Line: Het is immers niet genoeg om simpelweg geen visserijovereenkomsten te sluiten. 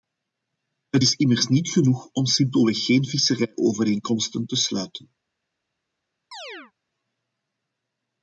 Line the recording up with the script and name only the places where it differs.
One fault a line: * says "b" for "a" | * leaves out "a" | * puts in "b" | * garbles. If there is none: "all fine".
all fine